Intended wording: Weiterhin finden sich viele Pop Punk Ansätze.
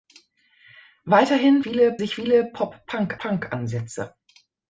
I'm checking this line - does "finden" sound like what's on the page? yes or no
no